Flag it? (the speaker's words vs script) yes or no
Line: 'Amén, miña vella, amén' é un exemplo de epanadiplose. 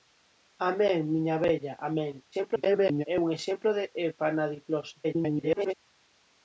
yes